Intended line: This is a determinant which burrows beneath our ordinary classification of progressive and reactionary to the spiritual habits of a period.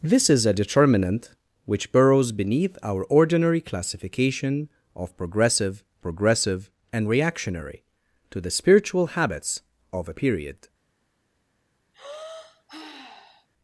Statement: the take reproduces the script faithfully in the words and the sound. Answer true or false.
false